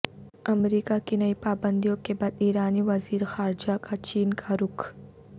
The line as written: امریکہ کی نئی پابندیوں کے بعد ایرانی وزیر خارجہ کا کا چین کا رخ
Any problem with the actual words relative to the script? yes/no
yes